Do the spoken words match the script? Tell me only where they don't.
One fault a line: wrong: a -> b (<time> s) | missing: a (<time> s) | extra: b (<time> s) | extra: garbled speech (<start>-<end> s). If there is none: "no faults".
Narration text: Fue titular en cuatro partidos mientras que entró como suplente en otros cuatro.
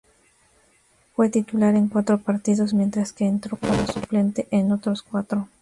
no faults